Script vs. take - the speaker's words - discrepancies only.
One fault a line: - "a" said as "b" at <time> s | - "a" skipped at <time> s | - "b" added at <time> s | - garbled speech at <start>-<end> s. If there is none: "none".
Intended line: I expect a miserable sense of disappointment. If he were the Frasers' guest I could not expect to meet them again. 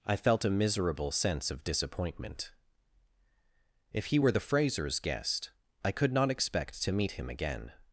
- "expect" said as "felt" at 0.1 s
- "them" said as "him" at 7.1 s